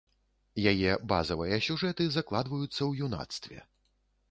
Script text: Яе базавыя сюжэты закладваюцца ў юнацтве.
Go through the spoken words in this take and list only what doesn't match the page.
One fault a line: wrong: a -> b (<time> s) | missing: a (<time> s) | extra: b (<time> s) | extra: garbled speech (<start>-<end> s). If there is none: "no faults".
no faults